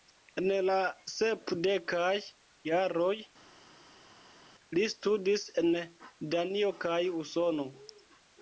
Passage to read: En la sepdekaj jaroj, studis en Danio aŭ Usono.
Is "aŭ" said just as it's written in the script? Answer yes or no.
no